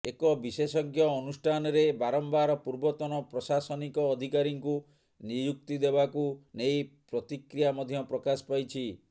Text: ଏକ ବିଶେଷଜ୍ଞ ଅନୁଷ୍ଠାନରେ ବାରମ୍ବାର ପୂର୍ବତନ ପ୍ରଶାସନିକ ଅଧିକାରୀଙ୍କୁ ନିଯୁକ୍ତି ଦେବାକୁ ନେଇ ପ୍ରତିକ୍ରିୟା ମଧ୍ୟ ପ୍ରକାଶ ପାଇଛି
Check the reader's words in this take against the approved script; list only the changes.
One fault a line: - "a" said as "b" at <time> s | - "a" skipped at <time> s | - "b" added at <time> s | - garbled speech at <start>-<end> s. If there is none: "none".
none